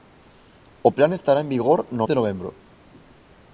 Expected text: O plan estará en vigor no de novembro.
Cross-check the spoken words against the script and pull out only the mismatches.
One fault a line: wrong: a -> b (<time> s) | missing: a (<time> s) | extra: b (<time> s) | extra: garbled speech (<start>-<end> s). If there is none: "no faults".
no faults